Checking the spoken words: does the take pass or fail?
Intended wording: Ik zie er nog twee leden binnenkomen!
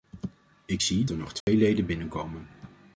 pass